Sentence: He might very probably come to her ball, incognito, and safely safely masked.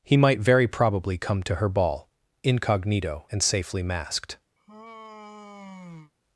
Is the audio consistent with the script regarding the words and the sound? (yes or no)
no